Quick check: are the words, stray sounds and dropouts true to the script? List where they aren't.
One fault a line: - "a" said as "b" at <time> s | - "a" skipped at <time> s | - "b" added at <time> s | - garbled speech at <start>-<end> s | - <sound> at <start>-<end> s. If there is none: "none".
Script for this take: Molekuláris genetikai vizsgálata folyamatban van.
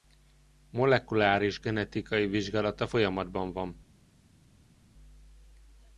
none